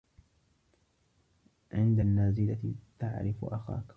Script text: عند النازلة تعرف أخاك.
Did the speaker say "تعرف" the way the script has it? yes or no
yes